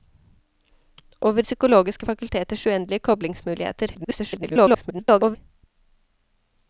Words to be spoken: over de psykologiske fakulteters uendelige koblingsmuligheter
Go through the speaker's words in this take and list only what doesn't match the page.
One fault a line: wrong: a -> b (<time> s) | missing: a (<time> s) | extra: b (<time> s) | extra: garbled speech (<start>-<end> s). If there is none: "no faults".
missing: de (1.4 s)
extra: garbled speech (3.9-5.4 s)